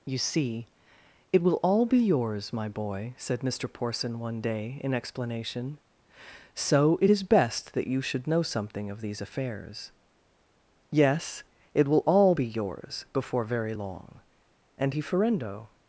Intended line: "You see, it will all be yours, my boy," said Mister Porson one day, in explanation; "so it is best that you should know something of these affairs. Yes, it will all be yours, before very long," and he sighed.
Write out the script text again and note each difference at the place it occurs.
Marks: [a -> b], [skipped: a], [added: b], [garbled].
"You see, it will all be yours, my boy," said Mister Porson one day, in explanation; "so it is best that you should know something of these affairs. Yes, it will all be yours, before very long," and he [sighed. -> ferendo]